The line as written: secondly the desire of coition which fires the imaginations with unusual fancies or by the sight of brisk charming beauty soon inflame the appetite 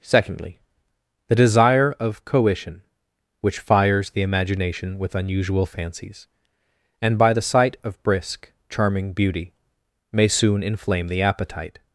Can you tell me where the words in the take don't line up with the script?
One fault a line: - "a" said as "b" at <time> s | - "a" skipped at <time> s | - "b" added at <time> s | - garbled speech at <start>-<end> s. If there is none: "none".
- "imaginations" said as "imagination" at 4.2 s
- "or" said as "and" at 7.0 s
- "may" added at 10.1 s